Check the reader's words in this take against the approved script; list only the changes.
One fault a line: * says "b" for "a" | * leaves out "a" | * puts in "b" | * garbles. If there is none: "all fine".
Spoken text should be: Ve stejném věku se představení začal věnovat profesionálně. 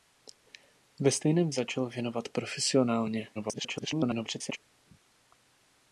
* leaves out "věku se představení"
* garbles